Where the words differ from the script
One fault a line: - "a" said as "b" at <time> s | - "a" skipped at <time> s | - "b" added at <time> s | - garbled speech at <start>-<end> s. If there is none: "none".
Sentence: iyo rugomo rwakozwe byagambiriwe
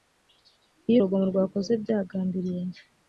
none